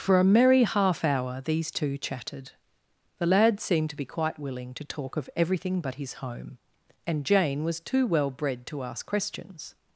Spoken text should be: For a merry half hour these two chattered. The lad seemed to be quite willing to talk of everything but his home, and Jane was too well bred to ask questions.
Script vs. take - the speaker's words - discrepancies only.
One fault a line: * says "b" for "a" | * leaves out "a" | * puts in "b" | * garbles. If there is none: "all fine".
* says "chatted" for "chattered"